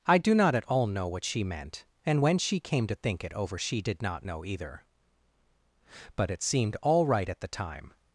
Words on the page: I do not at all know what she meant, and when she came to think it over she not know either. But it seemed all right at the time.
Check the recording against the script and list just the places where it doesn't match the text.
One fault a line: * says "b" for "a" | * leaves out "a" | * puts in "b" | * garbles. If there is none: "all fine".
* puts in "did"